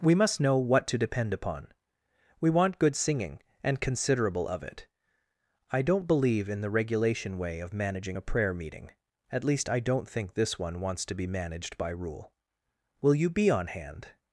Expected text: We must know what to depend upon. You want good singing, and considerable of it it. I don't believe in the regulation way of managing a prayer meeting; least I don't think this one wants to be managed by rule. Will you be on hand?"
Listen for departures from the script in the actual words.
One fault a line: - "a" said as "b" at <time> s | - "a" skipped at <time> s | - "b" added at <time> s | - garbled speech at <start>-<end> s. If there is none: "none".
- "You" said as "We" at 2.4 s
- "it" skipped at 4.9 s
- "at" added at 9.3 s